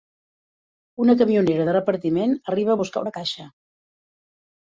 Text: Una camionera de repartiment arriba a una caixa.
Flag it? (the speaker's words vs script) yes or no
yes